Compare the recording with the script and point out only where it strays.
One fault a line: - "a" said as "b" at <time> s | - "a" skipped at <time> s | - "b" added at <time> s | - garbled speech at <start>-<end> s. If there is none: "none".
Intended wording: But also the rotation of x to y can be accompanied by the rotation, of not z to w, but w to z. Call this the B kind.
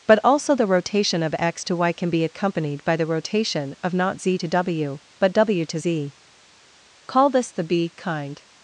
none